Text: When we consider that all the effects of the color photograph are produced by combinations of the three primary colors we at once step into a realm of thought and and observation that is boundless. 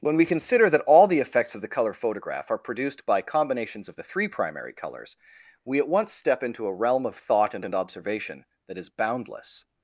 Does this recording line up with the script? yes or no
yes